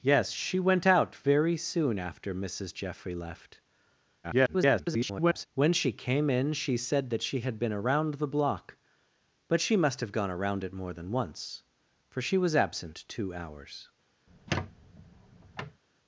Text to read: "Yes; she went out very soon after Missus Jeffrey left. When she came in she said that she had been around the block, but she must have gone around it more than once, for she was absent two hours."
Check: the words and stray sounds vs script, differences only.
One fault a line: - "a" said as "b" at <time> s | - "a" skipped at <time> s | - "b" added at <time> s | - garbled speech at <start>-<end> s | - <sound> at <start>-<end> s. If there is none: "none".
- garbled speech at 4.2-5.5 s
- squeak at 14.3-15.8 s